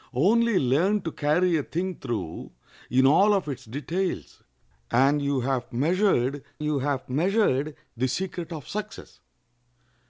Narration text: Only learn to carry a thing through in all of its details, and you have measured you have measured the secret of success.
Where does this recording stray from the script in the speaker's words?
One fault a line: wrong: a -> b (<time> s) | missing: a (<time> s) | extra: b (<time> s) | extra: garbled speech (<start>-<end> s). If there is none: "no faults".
no faults